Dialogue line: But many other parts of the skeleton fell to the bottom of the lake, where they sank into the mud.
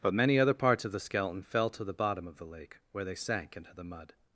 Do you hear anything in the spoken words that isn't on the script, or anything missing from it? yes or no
no